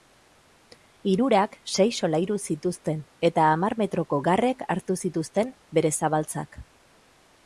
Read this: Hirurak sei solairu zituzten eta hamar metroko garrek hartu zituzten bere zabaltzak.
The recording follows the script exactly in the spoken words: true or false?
true